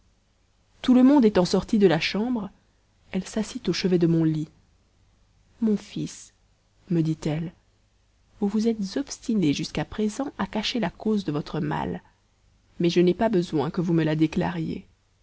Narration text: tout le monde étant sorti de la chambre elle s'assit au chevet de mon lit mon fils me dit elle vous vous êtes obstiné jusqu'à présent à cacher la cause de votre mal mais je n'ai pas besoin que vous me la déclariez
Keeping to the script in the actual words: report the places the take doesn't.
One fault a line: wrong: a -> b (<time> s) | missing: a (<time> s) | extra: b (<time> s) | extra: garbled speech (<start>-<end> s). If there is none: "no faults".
no faults